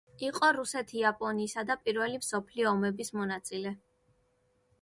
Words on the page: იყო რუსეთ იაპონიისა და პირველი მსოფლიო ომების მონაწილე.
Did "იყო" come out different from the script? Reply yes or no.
no